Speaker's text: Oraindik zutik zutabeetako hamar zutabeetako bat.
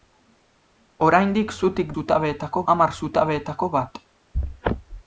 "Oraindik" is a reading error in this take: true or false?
false